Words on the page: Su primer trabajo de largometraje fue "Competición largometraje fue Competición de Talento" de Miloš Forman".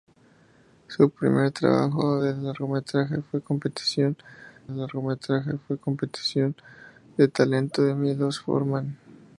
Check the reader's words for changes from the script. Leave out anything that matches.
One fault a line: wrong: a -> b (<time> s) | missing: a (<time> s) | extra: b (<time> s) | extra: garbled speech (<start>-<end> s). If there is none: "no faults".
no faults